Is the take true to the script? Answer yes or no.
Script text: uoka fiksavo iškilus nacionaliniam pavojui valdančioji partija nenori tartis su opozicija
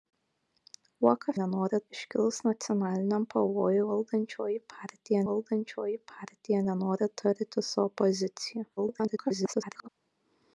no